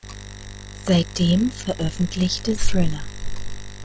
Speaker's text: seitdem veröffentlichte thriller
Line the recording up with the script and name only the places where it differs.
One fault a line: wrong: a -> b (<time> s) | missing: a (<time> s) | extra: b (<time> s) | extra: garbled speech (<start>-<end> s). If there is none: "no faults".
no faults